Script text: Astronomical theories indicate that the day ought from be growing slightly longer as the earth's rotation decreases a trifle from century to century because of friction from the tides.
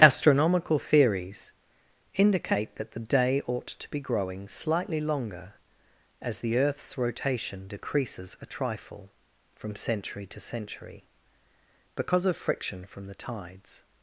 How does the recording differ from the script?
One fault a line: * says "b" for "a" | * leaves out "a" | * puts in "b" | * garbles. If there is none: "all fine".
* says "to" for "from"